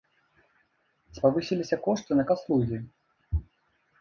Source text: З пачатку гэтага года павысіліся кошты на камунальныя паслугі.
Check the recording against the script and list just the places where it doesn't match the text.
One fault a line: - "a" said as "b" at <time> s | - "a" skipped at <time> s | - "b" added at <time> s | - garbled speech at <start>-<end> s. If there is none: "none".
- "пачатку гэтага года" skipped at 1.2 s
- "камунальныя" skipped at 2.3 s